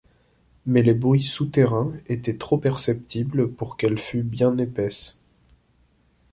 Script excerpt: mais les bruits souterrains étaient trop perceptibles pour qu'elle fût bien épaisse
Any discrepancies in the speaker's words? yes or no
no